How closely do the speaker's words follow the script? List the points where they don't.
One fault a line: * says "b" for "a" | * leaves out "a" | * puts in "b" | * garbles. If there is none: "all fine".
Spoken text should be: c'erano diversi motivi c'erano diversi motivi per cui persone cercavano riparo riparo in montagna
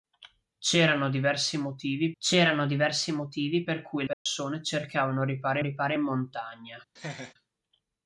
all fine